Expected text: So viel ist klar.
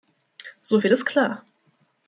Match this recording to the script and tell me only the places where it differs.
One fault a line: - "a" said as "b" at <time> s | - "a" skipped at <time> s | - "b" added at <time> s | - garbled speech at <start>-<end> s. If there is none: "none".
none